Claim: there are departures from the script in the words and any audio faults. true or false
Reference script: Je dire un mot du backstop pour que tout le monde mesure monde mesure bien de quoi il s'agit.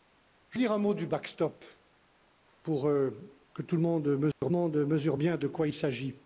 true